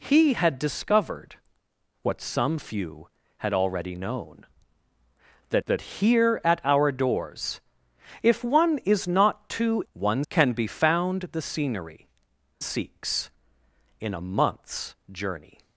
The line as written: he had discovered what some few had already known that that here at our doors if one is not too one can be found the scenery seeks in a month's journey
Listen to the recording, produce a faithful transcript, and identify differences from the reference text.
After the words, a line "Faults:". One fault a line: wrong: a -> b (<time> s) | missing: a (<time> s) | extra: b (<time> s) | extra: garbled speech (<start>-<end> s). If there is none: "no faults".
he had discovered what some few had already known that that here at our doors if one is not too one can be found the scenery seeks in a month's journey
Faults:
no faults